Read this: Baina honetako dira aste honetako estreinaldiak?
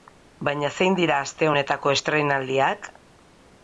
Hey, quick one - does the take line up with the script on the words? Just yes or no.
no